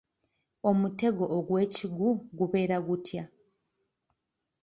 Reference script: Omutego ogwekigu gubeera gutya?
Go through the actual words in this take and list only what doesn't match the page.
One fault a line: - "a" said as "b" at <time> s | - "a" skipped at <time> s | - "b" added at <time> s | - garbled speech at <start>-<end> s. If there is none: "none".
none